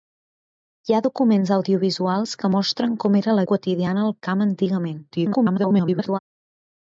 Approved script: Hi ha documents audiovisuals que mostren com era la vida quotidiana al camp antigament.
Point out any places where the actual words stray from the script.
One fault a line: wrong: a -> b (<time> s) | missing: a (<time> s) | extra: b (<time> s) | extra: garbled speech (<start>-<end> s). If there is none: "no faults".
missing: vida (3.4 s)
extra: garbled speech (5.1-6.2 s)